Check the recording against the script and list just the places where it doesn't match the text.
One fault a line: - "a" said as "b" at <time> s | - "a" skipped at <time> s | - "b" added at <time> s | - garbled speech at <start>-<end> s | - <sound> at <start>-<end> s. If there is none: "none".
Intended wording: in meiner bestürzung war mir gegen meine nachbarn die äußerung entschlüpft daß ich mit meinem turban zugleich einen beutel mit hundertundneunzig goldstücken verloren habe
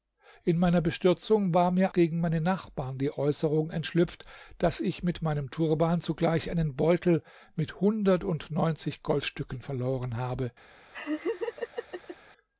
- laugh at 10.9-12.2 s